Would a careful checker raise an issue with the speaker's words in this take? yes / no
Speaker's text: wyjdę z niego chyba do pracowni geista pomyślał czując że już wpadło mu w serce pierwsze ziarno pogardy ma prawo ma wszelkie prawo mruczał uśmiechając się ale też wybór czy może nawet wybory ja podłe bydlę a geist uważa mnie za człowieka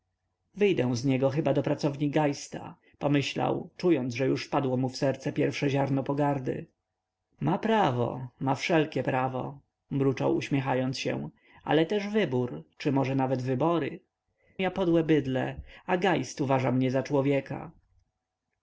no